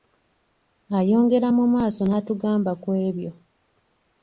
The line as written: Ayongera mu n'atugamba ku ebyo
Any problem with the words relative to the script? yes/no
yes